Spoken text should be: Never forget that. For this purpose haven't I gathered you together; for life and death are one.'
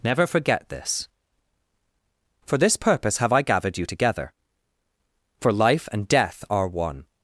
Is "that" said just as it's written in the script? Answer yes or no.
no